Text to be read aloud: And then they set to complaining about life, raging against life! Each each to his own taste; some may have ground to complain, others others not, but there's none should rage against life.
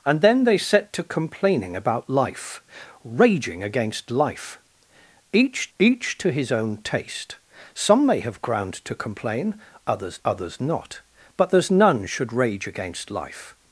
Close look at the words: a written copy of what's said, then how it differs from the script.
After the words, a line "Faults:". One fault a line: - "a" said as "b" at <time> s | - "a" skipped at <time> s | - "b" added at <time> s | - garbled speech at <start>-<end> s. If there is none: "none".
And then they set to complaining about life, raging against life! Each each to his own taste; some may have ground to complain, others others not, but there's none should rage against life.
Faults:
none